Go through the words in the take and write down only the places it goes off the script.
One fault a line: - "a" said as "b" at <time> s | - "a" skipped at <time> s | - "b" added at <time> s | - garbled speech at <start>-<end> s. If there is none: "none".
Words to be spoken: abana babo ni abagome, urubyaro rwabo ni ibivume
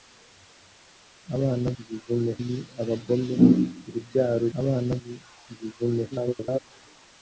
- "babo" said as "ibivume" at 1.8 s
- "rwabo" said as "abana" at 4.6 s
- garbled speech at 6.1-6.6 s